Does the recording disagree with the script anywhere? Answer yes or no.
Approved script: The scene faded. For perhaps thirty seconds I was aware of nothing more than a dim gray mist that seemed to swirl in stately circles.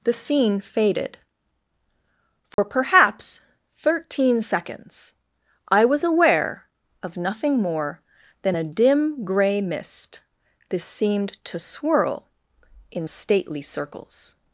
yes